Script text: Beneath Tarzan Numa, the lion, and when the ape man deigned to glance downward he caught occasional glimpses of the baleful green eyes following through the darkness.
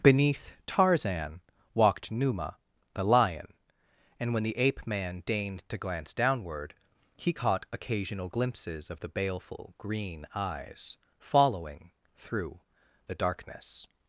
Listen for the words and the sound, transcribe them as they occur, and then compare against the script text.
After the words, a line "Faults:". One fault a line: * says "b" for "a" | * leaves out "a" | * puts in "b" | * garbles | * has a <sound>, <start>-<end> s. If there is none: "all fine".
Beneath Tarzan walked Numa, the lion, and when the ape man deigned to glance downward he caught occasional glimpses of the baleful green eyes following through the darkness.
Faults:
* puts in "walked"